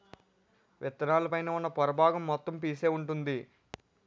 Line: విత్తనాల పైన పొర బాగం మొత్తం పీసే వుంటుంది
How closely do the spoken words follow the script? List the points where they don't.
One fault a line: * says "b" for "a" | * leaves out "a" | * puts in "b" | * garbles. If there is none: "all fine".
* puts in "ఉన్న"